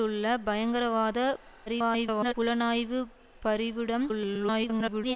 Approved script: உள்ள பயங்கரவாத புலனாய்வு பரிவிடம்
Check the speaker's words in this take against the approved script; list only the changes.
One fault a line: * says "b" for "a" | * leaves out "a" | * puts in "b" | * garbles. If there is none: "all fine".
* garbles
* garbles